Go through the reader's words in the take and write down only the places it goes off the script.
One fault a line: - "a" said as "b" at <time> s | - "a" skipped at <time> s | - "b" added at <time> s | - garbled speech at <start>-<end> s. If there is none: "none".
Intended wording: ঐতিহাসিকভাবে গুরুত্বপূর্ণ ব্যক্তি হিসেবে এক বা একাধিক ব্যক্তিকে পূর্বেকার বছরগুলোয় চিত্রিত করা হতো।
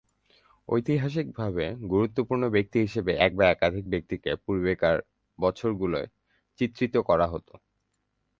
none